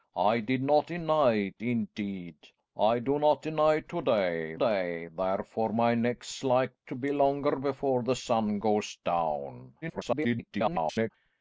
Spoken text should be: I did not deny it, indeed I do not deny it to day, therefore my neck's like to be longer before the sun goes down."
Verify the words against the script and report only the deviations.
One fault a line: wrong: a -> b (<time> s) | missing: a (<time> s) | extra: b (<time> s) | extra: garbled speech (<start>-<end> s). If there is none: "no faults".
extra: day (4.5 s)
extra: garbled speech (9.8-11.1 s)